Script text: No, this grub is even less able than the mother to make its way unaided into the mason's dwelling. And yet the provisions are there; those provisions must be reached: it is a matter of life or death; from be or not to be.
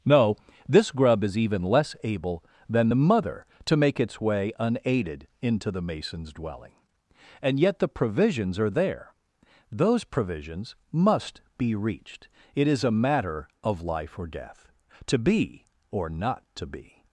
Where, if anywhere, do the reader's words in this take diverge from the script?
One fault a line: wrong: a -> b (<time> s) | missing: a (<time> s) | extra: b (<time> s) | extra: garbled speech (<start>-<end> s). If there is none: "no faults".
wrong: from -> to (15.1 s)